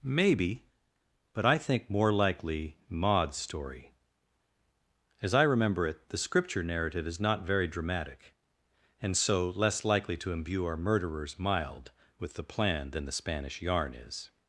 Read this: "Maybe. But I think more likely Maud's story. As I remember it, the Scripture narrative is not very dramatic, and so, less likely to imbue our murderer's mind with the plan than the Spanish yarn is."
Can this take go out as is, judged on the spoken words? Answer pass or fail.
fail